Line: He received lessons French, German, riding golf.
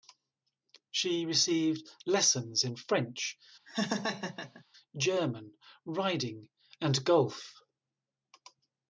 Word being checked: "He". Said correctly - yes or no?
no